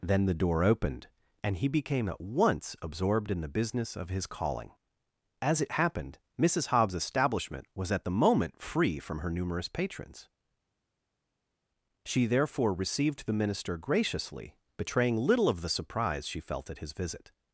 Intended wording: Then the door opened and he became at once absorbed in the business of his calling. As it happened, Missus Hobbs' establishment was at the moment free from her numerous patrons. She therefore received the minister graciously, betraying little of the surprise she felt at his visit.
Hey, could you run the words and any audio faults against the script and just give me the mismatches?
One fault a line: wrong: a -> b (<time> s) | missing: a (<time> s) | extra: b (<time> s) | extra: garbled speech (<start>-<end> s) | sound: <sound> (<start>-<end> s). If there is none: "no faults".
no faults